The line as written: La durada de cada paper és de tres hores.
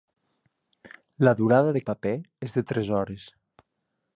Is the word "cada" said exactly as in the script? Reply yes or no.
no